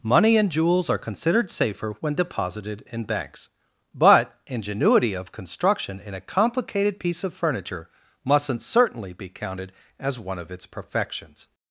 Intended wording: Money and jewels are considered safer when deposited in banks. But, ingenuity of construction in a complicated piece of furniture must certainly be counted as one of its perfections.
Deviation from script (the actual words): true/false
true